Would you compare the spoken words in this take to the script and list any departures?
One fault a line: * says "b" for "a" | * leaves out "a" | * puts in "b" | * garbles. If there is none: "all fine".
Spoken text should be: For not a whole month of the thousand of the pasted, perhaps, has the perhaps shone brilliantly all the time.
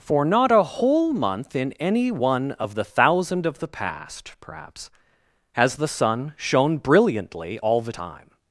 * puts in "in any one"
* says "past" for "pasted"
* says "sun" for "perhaps"